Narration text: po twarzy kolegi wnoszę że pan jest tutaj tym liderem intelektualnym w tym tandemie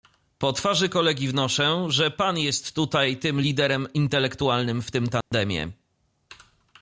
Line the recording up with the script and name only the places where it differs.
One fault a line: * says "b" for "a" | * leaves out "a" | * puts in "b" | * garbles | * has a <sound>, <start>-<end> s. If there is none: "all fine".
* has a dropout, 5.2-5.3 s